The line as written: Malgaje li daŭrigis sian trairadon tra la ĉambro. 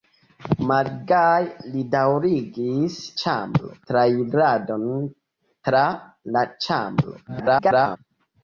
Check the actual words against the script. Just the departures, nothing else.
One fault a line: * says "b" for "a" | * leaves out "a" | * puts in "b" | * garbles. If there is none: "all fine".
* says "ĉambro" for "sian"
* garbles